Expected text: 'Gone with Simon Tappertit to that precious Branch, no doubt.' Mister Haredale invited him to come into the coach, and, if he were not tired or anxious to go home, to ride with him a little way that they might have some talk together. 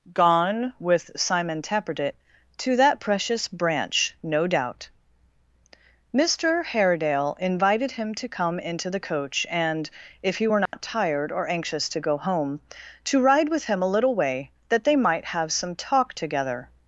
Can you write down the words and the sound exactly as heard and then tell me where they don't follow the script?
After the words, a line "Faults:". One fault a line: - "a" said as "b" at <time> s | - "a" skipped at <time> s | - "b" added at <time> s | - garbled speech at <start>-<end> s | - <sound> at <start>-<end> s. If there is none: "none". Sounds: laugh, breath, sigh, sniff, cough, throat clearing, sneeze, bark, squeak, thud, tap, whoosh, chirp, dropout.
'Gone with Simon Tappertit to that precious Branch, no doubt.' Mister Haredale invited him to come into the coach, and, if he were not tired or anxious to go home, to ride with him a little way that they might have some talk together.
Faults:
- dropout at 10.7-10.7 s